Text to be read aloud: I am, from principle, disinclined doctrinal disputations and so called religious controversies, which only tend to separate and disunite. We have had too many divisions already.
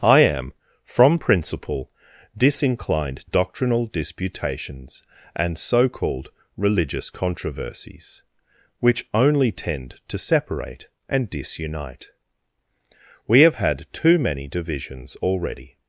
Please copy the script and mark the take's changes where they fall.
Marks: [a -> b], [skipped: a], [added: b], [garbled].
I am, from principle, disinclined doctrinal disputations and so called religious controversies, which only tend to separate and disunite. We have had too many divisions already.